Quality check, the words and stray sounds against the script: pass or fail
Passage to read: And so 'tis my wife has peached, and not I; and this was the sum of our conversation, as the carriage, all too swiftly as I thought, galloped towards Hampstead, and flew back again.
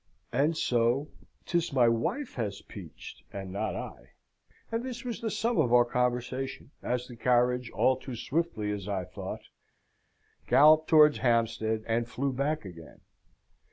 pass